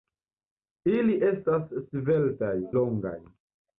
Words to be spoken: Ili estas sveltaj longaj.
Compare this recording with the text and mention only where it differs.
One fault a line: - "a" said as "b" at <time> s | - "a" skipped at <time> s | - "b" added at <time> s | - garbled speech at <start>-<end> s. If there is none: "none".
none